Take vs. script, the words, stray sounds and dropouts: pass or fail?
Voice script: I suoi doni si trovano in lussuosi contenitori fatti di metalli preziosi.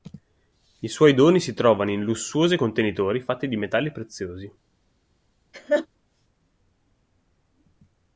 fail